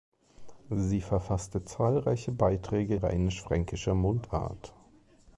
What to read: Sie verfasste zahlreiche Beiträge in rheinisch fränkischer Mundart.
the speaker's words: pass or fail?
fail